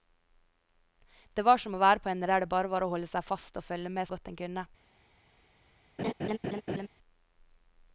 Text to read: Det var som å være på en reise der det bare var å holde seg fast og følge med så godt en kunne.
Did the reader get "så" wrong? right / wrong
wrong